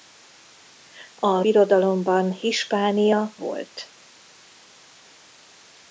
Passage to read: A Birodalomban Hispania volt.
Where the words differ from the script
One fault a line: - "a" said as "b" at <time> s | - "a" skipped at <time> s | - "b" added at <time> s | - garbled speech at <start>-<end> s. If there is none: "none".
none